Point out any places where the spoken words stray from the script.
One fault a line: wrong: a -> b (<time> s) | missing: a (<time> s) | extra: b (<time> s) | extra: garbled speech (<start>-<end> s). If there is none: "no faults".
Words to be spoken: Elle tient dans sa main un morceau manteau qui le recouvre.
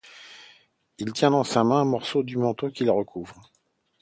wrong: Elle -> Il (1.0 s)
extra: du (2.2 s)